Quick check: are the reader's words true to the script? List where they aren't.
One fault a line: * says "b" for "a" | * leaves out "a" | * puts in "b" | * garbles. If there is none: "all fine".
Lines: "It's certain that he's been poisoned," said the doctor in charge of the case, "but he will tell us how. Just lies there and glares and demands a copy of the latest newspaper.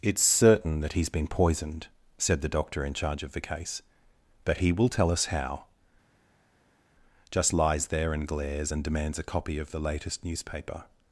all fine